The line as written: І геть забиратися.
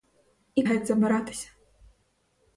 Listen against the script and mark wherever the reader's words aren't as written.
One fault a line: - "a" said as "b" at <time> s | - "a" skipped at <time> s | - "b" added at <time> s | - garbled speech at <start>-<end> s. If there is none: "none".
none